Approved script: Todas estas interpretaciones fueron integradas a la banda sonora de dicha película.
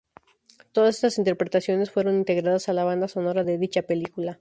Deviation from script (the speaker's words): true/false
false